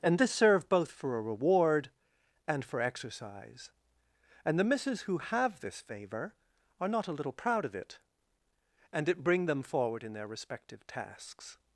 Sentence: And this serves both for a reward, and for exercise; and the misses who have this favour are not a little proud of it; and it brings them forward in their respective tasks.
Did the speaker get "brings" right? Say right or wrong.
wrong